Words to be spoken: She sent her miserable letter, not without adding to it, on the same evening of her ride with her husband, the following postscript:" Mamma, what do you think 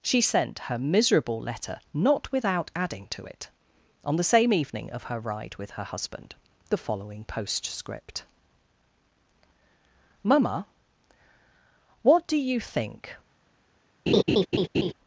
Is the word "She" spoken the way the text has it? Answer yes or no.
yes